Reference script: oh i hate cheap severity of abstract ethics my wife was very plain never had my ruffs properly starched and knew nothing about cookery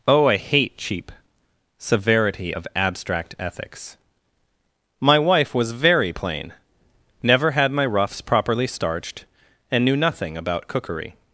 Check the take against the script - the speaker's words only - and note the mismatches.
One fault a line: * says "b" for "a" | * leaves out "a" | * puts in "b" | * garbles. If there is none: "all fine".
all fine